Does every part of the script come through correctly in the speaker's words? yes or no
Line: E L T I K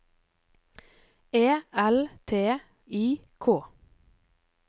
yes